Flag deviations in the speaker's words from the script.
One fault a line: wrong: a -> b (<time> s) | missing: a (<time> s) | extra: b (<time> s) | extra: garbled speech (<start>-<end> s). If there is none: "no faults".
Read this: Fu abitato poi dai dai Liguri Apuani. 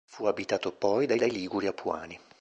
no faults